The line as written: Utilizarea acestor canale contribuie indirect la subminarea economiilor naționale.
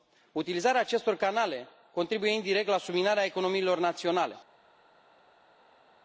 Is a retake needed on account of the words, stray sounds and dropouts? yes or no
no